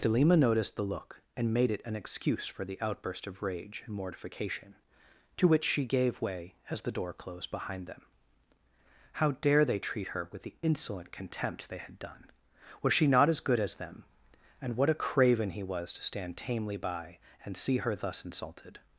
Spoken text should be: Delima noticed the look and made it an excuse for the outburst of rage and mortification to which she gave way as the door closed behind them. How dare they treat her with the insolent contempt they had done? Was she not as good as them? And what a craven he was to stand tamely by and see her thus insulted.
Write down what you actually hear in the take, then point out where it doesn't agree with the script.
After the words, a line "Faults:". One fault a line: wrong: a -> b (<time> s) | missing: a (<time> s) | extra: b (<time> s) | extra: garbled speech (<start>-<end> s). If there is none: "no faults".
Delima noticed the look and made it an excuse for the outburst of rage and mortification to which she gave way as the door closed behind them. How dare they treat her with the insolent contempt they had done? Was she not as good as them? And what a craven he was to stand tamely by and see her thus insulted.
Faults:
no faults